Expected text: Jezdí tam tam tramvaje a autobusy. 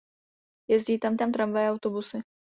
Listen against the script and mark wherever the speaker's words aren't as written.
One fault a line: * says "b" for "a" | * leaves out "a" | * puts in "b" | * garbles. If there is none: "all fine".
all fine